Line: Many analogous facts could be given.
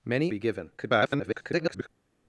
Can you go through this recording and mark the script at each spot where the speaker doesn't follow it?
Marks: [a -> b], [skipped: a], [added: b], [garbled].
Many [skipped: analogous facts could] be given. [garbled]